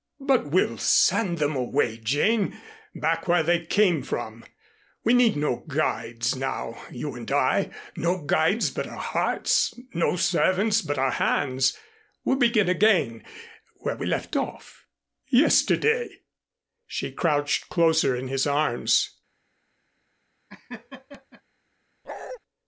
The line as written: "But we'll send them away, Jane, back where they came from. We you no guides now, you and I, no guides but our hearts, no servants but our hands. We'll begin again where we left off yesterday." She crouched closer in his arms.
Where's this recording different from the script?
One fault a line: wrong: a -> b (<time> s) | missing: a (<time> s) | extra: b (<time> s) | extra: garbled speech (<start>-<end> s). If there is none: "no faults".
wrong: you -> need (5.1 s)